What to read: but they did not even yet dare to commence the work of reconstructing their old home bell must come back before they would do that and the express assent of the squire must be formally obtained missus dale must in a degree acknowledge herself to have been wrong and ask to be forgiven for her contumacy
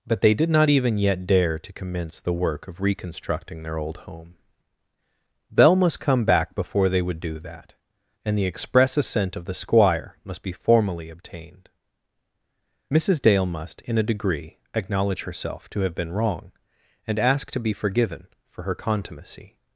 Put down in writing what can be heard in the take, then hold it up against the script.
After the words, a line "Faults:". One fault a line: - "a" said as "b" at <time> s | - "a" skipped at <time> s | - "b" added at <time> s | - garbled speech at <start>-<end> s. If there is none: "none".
but they did not even yet dare to commence the work of reconstructing their old home bell must come back before they would do that and the express assent of the squire must be formally obtained missus dale must in a degree acknowledge herself to have been wrong and ask to be forgiven for her contumacy
Faults:
none